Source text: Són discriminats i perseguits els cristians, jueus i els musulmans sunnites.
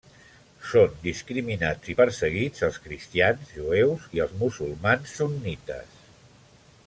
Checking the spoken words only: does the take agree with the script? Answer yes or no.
yes